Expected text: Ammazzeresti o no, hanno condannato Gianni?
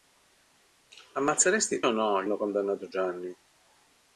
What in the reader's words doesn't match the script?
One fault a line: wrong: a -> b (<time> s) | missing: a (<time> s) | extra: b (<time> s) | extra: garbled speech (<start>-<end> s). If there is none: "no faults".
no faults